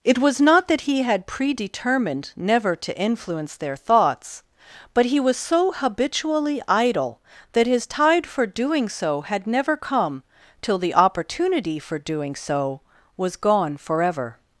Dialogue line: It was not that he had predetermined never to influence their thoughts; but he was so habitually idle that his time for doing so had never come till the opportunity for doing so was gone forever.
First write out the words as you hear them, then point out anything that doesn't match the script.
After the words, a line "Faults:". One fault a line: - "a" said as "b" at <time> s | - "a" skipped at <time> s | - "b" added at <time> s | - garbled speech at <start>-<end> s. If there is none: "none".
It was not that he had predetermined never to influence their thoughts; but he was so habitually idle that his tide for doing so had never come till the opportunity for doing so was gone forever.
Faults:
- "time" said as "tide" at 7.8 s